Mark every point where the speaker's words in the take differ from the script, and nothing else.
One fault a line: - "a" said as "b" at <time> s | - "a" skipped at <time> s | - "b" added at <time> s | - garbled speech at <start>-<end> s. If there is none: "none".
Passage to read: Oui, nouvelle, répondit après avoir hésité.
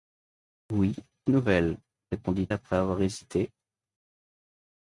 none